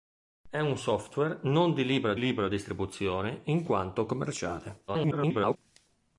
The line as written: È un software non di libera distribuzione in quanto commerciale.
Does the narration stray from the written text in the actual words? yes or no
yes